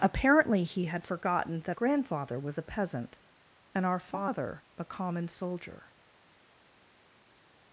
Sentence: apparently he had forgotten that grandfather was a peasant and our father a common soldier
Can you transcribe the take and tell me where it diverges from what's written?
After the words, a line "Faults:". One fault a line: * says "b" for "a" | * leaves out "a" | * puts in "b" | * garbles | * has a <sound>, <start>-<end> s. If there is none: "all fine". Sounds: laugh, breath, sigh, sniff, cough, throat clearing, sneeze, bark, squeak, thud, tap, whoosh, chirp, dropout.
apparently he had forgotten that grandfather was a peasant and our father a common soldier
Faults:
all fine